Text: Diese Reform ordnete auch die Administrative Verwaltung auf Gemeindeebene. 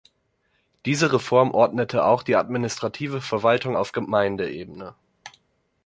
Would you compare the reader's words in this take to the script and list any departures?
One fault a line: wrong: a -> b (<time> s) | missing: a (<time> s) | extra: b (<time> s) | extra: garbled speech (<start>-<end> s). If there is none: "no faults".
no faults